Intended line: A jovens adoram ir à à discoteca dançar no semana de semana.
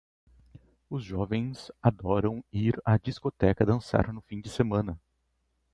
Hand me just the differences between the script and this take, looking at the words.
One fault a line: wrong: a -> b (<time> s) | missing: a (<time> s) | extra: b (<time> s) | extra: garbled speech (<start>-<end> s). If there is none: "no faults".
wrong: A -> Os (0.9 s)
missing: à (3.0 s)
wrong: semana -> fim (4.2 s)